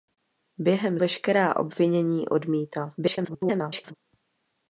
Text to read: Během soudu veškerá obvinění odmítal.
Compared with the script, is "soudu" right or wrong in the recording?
wrong